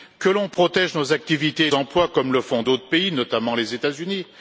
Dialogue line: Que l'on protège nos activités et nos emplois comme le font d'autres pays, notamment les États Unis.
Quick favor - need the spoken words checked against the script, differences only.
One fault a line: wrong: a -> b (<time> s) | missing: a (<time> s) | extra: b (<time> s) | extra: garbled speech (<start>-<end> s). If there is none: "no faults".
missing: nos (1.7 s)